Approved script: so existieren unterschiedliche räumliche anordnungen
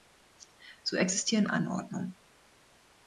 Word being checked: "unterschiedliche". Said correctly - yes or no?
no